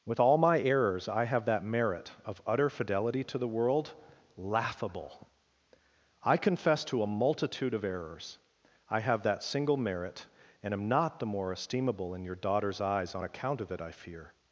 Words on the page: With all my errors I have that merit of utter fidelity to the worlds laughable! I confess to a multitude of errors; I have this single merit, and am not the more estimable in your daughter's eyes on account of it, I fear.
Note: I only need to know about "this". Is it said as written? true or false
false